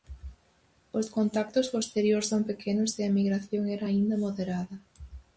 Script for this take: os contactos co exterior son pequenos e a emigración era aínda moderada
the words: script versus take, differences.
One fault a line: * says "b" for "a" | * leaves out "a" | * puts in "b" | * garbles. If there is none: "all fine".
all fine